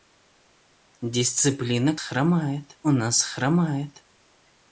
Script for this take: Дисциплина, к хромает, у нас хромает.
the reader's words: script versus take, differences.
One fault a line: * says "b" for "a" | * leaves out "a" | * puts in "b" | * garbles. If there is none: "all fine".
all fine